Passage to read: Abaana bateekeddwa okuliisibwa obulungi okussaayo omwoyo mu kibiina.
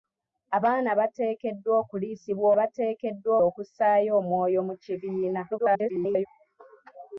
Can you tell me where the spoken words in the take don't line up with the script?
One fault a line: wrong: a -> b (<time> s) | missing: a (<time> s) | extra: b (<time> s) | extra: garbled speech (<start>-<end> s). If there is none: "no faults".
wrong: obulungi -> bateekeddwa (2.6 s)
extra: garbled speech (5.5-6.3 s)